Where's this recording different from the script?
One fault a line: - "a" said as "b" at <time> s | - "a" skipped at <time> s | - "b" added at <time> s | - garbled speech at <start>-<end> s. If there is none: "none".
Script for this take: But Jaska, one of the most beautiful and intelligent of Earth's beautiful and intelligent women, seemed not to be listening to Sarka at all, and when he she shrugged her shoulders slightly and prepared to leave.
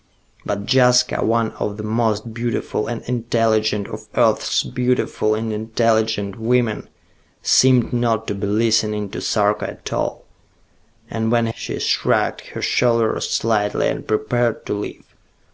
none